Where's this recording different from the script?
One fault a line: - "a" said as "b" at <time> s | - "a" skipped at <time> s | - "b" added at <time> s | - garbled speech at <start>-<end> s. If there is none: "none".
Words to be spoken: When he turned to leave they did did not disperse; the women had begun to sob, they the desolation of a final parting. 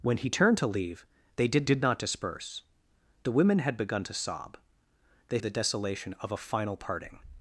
none